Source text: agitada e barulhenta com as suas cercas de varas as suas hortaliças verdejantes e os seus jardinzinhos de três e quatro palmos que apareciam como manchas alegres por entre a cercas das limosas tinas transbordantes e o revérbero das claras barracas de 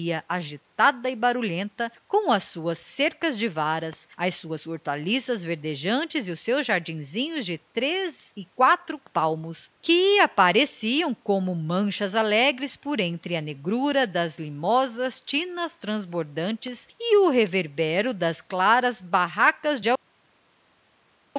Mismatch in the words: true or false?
true